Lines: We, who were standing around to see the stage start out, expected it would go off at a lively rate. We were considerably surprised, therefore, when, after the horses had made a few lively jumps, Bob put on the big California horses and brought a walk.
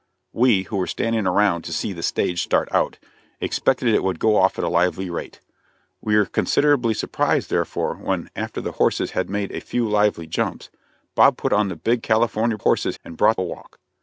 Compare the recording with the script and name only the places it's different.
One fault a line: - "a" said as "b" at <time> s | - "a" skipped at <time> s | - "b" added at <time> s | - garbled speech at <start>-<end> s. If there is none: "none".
none